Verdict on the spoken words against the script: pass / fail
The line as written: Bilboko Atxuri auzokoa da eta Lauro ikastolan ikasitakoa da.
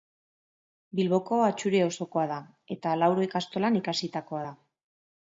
pass